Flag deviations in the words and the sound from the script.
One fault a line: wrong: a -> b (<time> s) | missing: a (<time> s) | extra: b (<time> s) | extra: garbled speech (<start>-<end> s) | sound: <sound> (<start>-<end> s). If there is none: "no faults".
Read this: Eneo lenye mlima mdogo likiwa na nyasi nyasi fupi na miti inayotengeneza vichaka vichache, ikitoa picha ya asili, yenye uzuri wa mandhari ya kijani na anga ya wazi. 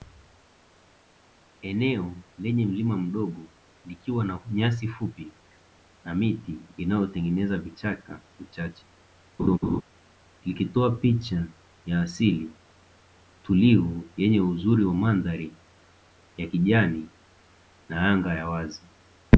missing: nyasi (4.9 s)
sound: laugh (9.4-9.8 s)
extra: tulivu (13.4 s)